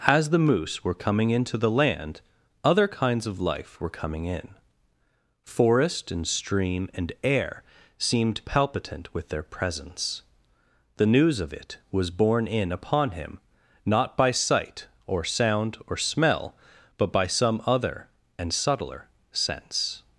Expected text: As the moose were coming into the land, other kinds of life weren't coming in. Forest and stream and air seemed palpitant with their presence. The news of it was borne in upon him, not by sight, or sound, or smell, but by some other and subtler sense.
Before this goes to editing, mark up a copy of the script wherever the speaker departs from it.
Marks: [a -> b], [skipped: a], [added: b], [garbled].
As the moose were coming into the land, other kinds of life [weren't -> were] coming in. Forest and stream and air seemed palpitant with their presence. The news of it was borne in upon him, not by sight, or sound, or smell, but by some other and subtler sense.